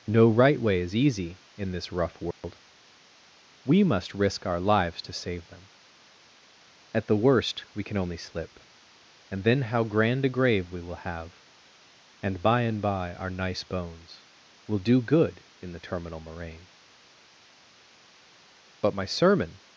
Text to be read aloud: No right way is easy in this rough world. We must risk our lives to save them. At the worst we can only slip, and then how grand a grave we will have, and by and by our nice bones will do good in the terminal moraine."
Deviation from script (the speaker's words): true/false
true